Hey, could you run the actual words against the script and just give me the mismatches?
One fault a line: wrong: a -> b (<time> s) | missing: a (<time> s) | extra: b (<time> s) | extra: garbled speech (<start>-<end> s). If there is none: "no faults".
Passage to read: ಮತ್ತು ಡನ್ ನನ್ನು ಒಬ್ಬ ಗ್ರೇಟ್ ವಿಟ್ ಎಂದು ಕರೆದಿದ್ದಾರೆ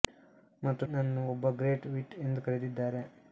missing: ಡನ್ (0.8 s)